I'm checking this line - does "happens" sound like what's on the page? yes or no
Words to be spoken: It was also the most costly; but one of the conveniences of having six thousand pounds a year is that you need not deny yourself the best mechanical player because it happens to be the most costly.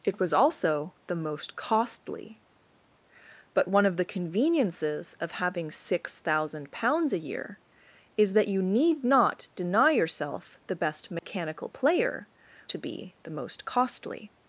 no